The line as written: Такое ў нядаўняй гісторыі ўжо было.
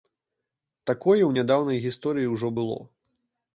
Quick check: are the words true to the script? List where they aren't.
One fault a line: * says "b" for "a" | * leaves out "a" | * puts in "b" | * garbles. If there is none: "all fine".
all fine